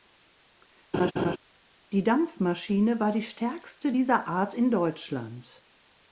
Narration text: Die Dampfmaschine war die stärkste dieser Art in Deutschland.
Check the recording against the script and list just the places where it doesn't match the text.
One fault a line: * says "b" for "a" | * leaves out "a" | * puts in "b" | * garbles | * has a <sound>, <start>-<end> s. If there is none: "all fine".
* has a laugh, 0.9-1.4 s